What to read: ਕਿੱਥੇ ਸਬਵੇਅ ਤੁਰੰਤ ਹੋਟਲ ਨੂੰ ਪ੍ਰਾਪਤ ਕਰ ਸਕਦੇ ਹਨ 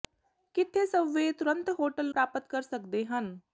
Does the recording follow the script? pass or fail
fail